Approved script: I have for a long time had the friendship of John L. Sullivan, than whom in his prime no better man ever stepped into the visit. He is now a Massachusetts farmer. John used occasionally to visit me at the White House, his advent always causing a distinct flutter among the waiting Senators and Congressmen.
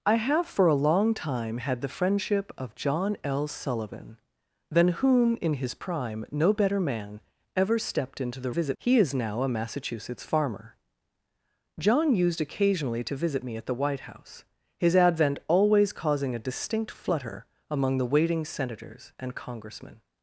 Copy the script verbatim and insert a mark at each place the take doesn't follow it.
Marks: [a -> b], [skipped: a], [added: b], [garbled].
I have for a long time had the friendship of John L. Sullivan, than whom in his prime no better man ever stepped into the visit. He is now a Massachusetts farmer. John used occasionally to visit me at the White House, his advent always causing a distinct flutter among the waiting Senators and Congressmen.